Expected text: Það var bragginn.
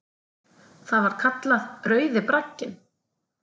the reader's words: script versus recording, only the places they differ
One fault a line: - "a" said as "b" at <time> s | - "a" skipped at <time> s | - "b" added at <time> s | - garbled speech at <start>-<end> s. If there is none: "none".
- "kallað Rauði" added at 1.2 s